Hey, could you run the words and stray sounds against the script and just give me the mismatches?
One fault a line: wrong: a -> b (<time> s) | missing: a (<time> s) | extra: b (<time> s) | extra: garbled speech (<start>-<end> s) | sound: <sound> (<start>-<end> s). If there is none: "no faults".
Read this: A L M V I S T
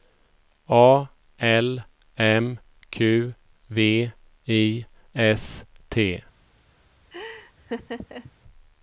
extra: Q (2.9 s)
sound: laugh (7.1-8.3 s)